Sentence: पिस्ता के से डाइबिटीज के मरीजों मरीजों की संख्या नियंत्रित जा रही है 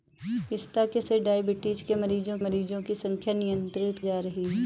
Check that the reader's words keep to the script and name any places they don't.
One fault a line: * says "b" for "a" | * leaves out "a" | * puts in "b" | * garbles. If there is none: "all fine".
all fine